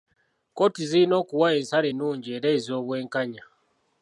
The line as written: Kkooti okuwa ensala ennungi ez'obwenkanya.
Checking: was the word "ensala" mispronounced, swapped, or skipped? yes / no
no